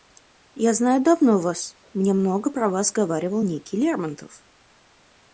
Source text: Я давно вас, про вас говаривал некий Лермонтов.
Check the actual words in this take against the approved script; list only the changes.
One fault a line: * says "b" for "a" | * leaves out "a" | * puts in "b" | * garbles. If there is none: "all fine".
* puts in "знаю"
* puts in "мне много"